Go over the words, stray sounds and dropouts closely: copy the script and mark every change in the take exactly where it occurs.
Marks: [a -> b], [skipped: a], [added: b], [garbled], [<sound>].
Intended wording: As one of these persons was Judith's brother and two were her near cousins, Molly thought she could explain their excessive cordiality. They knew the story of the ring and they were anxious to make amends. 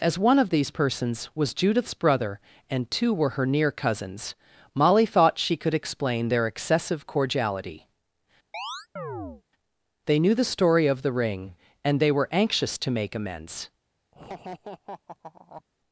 As one of these persons was Judith's brother and two were her near cousins, Molly thought she could explain their excessive cordiality. [chirp] They knew the story of the ring and they were anxious to make amends. [laugh]